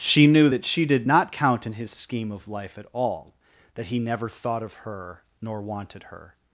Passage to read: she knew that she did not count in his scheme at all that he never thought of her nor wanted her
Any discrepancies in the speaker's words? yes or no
yes